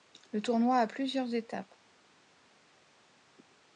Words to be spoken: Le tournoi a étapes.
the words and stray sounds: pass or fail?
fail